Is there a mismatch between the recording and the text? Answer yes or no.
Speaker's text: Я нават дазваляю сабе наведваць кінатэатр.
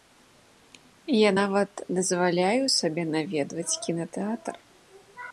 no